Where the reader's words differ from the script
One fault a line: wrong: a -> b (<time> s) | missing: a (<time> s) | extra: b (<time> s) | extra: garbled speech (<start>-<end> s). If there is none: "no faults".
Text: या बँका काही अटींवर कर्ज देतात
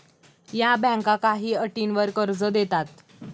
no faults